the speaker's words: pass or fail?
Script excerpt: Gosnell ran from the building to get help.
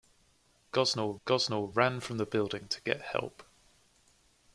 fail